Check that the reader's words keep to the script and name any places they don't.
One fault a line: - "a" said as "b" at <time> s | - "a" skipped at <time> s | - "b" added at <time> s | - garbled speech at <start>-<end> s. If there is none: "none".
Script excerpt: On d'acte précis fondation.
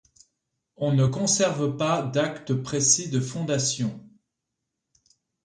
- "ne conserve pas" added at 0.9 s
- "de" added at 3.1 s